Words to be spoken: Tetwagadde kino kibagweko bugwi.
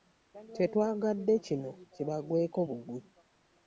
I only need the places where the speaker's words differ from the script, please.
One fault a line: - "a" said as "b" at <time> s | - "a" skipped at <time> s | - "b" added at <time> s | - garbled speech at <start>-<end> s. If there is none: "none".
none